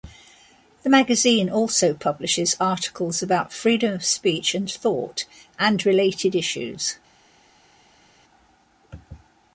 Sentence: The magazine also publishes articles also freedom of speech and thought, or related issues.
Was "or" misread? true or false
true